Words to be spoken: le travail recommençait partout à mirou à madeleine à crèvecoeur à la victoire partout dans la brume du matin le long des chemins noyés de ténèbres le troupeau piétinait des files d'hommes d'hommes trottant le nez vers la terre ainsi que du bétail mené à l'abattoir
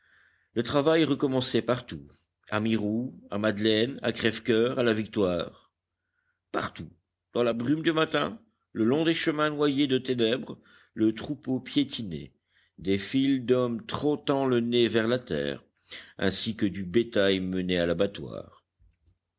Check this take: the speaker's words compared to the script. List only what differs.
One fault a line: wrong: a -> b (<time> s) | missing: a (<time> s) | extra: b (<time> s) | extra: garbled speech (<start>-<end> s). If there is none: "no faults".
missing: d'hommes (13.9 s)